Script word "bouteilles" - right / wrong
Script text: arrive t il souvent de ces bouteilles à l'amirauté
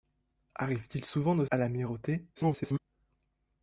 wrong